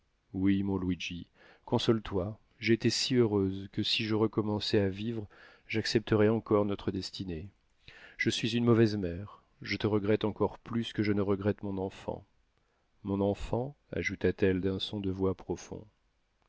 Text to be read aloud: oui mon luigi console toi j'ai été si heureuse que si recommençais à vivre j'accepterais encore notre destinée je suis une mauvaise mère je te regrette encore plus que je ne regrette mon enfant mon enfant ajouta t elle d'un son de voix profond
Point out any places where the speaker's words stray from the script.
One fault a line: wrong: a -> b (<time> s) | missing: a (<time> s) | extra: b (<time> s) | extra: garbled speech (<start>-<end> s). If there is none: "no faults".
extra: je (4.0 s)